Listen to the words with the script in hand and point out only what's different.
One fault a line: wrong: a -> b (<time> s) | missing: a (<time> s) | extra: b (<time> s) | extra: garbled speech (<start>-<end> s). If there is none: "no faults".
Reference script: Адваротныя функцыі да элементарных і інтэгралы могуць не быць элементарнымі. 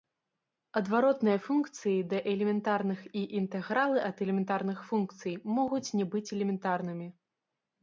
extra: ад элементарных функцый (4.1 s)